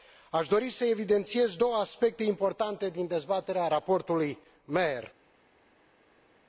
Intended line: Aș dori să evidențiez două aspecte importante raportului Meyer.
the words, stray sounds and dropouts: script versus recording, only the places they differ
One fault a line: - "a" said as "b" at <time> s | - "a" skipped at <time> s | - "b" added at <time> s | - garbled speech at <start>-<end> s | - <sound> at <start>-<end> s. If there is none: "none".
- "din dezbaterea" added at 2.9 s